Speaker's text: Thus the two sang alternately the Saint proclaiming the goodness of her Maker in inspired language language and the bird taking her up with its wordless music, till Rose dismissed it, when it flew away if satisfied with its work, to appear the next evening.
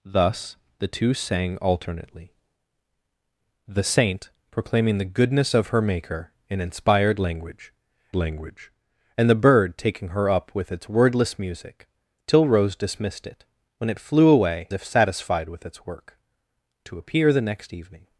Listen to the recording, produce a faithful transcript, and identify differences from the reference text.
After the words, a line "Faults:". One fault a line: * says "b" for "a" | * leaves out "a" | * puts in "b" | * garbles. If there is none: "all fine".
Thus the two sang alternately the Saint proclaiming the goodness of her Maker in inspired language language and the bird taking her up with its wordless music, till Rose dismissed it, when it flew away if satisfied with its work, to appear the next evening.
Faults:
all fine